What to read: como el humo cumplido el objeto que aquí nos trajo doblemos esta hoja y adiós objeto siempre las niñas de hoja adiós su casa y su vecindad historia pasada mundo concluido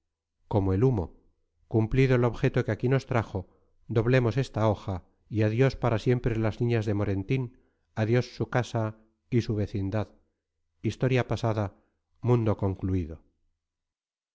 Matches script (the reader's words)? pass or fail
fail